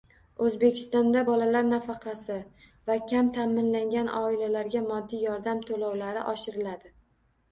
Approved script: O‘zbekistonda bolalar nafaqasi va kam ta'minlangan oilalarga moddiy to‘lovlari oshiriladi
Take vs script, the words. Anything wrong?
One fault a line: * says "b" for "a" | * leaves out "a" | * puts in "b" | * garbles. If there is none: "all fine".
* puts in "yordam"